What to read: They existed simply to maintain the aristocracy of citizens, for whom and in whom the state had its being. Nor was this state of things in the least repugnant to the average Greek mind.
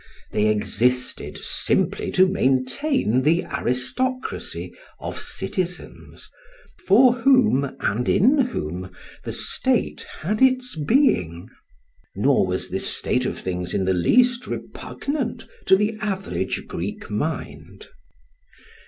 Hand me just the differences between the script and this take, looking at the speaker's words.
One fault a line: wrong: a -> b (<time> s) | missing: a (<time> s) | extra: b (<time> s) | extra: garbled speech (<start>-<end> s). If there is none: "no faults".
no faults